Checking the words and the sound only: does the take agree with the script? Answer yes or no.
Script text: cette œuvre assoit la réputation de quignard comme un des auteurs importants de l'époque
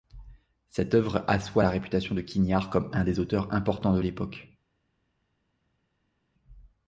yes